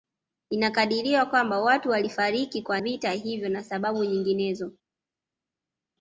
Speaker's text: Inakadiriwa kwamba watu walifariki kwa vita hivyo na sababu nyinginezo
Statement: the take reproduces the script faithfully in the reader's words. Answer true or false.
true